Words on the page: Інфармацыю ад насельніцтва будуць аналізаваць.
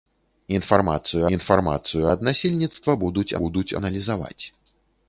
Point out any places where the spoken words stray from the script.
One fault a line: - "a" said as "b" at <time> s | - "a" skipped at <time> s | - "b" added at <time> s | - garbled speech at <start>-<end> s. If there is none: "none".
- "інфармацыю" added at 1.4 s
- "будуць" added at 3.4 s